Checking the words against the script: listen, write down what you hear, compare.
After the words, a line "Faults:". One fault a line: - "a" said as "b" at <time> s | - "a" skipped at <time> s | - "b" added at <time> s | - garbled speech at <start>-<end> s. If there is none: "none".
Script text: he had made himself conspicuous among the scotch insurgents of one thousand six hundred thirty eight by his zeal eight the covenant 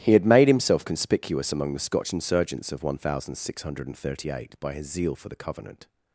he had made himself conspicuous among the scotch insurgents of one thousand six hundred thirty eight by his zeal for the covenant
Faults:
- "eight" said as "for" at 5.2 s